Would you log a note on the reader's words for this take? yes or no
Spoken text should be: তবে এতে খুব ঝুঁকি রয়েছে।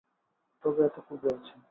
yes